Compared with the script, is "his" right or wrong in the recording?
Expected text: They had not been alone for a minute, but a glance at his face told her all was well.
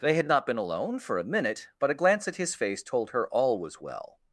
right